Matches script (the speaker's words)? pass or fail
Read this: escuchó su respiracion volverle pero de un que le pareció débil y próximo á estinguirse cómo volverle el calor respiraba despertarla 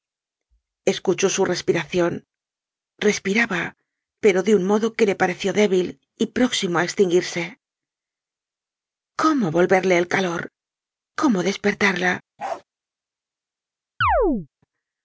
fail